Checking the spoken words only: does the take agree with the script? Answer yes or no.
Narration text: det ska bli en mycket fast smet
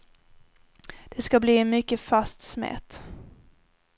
yes